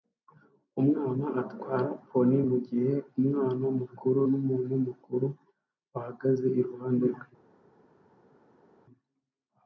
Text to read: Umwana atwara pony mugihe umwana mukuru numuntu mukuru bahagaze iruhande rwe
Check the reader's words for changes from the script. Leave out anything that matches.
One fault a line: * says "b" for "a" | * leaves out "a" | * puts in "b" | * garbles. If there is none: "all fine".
all fine